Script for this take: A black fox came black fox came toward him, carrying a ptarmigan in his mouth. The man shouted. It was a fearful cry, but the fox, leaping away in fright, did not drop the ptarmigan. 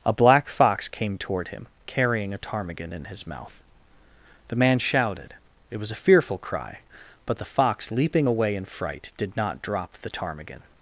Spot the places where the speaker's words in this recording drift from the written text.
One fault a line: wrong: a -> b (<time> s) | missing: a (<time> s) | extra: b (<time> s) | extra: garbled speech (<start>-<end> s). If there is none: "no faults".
missing: black fox came (1.2 s)